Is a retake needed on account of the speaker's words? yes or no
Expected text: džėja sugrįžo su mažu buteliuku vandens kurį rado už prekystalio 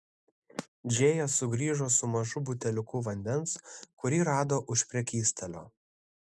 no